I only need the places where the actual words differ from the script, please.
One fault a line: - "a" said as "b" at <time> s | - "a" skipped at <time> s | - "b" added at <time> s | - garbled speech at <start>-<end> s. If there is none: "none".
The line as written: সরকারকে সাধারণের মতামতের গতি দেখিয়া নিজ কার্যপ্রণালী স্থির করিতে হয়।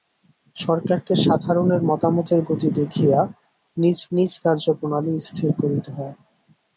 - "নিজ" added at 4.1 s